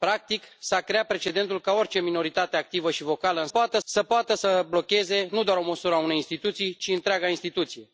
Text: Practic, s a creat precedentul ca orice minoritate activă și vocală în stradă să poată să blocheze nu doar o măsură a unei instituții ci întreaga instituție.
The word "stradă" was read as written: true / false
false